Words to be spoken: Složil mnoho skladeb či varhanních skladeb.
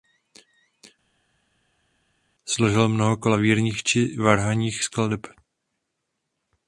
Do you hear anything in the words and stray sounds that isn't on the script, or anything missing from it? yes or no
yes